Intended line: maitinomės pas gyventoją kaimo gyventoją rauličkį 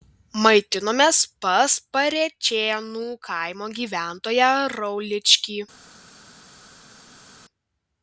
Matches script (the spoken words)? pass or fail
fail